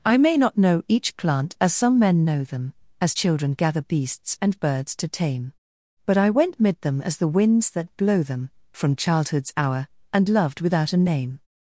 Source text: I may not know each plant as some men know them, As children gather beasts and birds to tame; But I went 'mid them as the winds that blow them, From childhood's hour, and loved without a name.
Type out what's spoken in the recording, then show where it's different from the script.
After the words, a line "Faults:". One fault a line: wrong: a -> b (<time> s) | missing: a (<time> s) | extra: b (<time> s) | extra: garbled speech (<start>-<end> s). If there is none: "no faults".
I may not know each plant as some men know them, As children gather beasts and birds to tame; But I went 'mid them as the winds that blow them, From childhood's hour, and loved without a name.
Faults:
no faults